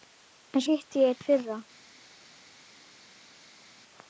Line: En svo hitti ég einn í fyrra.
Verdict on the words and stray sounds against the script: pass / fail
fail